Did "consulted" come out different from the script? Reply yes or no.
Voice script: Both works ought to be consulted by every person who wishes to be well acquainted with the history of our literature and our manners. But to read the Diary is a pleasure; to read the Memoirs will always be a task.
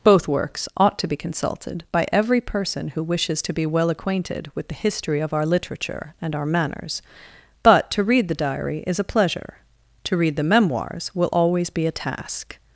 no